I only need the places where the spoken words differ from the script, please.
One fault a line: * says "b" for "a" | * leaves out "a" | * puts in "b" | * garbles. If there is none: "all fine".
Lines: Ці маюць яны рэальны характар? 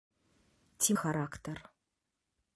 * leaves out "маюць яны рэальны"